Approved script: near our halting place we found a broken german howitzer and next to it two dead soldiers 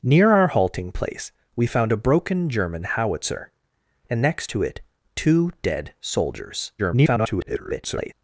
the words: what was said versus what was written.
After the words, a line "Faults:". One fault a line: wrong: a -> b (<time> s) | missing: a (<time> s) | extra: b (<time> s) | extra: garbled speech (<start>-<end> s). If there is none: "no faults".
near our halting place we found a broken german howitzer and next to it two dead soldiers [garbled]
Faults:
extra: garbled speech (6.8-8.1 s)